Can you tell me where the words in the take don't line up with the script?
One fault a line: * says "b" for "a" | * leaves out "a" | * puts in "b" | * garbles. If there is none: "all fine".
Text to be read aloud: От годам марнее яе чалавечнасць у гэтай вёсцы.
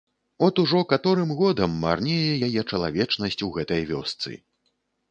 * puts in "ужо каторым"